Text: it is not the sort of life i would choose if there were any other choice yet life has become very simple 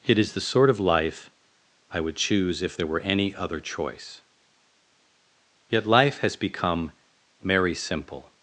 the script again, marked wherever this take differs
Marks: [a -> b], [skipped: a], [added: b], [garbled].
it is [skipped: not] the sort of life i would choose if there were any other choice yet life has become [very -> merry] simple